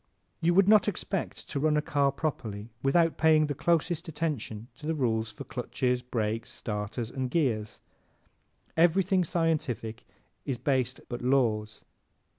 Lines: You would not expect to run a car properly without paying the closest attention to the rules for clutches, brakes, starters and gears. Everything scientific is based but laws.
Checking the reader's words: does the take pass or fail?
pass